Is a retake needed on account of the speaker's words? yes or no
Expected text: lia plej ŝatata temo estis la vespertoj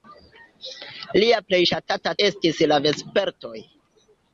yes